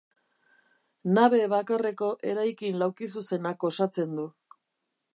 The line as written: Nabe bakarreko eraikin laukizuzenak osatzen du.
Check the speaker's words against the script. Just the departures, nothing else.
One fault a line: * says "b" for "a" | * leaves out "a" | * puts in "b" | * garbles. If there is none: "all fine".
all fine